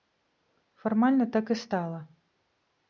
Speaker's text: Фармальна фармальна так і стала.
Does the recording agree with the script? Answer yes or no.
no